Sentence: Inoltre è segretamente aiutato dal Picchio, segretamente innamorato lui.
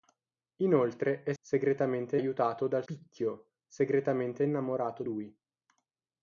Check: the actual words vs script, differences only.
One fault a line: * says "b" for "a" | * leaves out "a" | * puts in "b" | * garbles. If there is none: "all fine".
all fine